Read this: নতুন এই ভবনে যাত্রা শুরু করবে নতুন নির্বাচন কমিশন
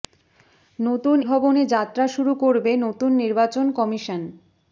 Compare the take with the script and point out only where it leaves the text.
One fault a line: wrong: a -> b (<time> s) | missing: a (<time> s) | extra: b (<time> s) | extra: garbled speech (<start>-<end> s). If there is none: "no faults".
missing: এই (1.2 s)